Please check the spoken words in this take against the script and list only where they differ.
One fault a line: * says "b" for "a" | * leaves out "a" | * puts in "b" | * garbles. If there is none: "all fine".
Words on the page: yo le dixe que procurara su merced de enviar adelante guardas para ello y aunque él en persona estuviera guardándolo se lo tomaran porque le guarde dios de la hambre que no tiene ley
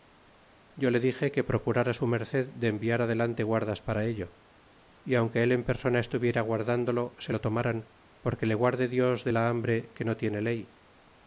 all fine